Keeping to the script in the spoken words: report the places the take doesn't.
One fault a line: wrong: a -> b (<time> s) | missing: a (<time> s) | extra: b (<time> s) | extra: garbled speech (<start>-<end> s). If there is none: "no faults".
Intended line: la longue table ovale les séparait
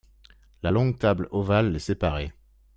no faults